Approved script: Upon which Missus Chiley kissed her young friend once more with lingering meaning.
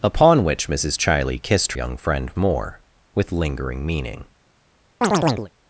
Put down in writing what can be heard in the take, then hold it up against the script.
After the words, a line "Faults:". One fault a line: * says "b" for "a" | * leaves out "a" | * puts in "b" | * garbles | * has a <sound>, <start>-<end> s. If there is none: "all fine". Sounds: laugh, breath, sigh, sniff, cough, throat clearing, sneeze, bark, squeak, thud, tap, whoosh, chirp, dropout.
Upon which Missus Chiley kissed young friend more with lingering meaning.
Faults:
* leaves out "her"
* leaves out "once"
* has a chirp, 5.0-5.5 s